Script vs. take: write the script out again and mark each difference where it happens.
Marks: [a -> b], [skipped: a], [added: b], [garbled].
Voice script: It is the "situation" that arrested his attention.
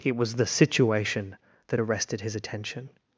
It [is -> was] the "situation" that arrested his attention.